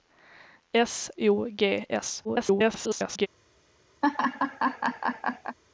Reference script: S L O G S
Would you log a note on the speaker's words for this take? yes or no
yes